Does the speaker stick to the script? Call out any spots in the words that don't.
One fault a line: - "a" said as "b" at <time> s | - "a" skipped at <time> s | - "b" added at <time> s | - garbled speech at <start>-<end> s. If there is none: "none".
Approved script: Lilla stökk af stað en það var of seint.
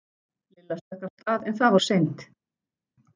- "var" skipped at 1.8 s